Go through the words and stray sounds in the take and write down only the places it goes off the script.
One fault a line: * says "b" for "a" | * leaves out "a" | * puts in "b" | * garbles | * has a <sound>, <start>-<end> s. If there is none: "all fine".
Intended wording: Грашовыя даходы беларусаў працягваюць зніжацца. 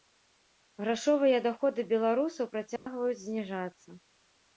* has a dropout, 2.8-2.9 s